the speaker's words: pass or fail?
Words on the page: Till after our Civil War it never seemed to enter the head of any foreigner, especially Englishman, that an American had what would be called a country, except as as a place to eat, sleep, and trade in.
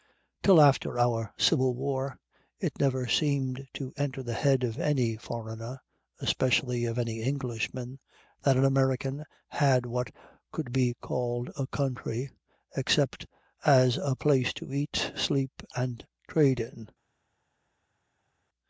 fail